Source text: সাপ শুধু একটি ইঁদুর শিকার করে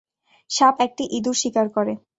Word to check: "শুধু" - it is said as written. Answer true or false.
false